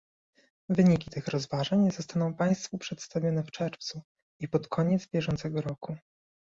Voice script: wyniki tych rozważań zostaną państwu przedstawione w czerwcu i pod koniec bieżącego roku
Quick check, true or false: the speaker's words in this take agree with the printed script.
true